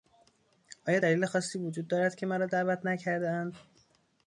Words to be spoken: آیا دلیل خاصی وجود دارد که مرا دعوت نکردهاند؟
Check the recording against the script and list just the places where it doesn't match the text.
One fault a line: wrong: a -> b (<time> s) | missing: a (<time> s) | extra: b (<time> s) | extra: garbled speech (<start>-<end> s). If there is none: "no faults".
no faults